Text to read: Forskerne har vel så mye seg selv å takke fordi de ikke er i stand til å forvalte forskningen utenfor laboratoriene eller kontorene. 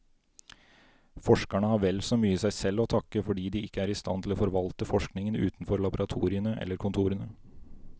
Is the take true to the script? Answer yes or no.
yes